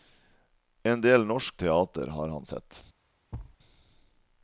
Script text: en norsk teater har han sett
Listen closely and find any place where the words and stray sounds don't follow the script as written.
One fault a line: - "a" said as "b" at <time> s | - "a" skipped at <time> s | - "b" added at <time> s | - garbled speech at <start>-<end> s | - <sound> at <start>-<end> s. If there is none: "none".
- "del" added at 1.0 s
- thud at 3.3-3.6 s